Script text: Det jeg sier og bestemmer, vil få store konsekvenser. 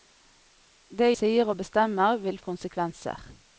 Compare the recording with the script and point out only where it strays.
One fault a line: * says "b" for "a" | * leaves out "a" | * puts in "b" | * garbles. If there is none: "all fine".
* leaves out "jeg"
* leaves out "få store"